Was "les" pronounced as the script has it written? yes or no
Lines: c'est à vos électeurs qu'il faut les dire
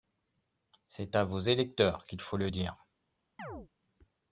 no